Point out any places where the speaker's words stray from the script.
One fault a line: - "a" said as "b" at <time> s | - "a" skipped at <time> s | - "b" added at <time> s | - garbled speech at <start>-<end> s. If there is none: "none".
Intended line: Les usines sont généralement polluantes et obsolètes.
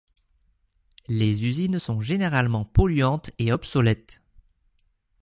none